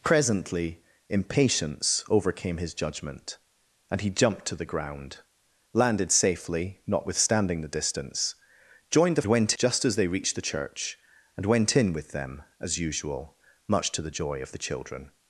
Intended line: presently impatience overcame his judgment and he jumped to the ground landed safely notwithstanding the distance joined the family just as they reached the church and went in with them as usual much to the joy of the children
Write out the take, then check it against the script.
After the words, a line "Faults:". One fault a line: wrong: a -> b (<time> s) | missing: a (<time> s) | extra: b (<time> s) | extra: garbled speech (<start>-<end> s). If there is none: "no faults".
presently impatience overcame his judgment and he jumped to the ground landed safely notwithstanding the distance joined the went just as they reached the church and went in with them as usual much to the joy of the children
Faults:
wrong: family -> went (9.2 s)